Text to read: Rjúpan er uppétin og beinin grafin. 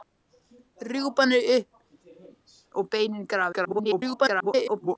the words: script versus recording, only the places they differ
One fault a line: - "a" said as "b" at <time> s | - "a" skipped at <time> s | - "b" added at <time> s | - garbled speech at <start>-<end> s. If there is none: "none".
- "uppétin" skipped at 1.6 s
- garbled speech at 3.5-5.0 s